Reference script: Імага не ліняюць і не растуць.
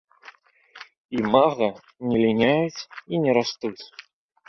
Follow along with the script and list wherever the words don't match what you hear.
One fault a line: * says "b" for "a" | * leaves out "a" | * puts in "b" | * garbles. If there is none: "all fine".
all fine